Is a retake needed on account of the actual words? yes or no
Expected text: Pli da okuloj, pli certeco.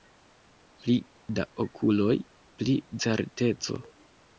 no